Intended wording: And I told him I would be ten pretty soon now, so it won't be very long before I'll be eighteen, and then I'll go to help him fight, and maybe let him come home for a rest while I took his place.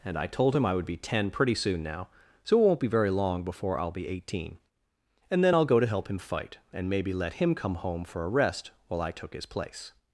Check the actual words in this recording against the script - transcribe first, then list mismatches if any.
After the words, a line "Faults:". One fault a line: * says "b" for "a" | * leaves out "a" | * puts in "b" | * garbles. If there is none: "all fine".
And I told him I would be ten pretty soon now, so it won't be very long before I'll be eighteen, and then I'll go to help him fight, and maybe let him come home for a rest while I took his place.
Faults:
all fine